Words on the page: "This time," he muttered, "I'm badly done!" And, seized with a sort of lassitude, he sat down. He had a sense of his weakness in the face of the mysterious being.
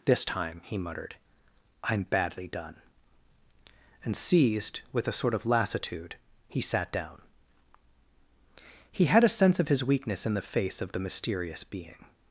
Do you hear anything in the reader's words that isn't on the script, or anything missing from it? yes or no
no